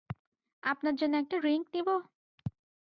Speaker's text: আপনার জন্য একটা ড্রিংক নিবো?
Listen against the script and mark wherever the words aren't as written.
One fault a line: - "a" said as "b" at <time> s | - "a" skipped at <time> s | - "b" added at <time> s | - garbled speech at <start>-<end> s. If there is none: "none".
none